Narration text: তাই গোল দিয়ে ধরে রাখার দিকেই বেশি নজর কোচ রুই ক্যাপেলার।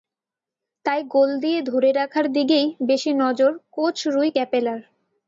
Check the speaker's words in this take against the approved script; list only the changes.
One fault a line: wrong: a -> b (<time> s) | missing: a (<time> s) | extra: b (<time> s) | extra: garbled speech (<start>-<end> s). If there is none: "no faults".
no faults